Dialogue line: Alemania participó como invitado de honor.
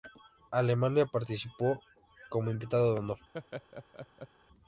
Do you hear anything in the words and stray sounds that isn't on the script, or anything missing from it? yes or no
yes